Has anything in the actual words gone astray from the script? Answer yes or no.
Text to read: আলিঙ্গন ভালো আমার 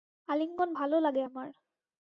yes